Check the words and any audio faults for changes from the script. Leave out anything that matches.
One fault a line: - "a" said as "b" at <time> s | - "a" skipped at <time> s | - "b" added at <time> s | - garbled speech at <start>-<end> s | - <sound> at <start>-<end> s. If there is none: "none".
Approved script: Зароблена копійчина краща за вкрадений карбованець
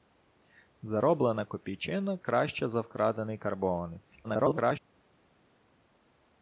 - garbled speech at 4.2-4.8 s